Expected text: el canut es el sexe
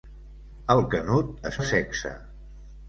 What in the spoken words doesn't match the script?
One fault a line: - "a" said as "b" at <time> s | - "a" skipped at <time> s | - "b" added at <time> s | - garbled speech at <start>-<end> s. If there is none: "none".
none